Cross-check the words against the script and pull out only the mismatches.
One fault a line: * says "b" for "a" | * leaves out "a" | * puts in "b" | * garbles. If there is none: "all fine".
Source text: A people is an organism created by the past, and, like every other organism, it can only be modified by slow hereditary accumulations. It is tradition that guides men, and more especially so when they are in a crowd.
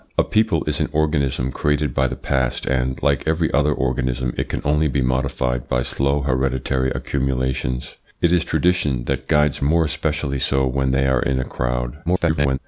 * leaves out "men and"
* garbles